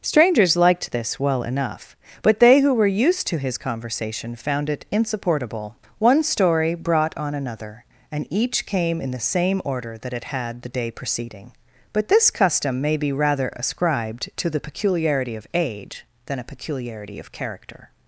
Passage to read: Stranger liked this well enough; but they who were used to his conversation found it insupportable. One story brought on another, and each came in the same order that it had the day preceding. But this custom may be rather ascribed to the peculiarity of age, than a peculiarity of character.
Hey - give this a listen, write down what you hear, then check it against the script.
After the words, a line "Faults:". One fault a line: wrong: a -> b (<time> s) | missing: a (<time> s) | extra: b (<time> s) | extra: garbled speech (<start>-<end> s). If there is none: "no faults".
Strangers liked this well enough; but they who were used to his conversation found it insupportable. One story brought on another, and each came in the same order that it had the day preceding. But this custom may be rather ascribed to the peculiarity of age, than a peculiarity of character.
Faults:
wrong: Stranger -> Strangers (0.0 s)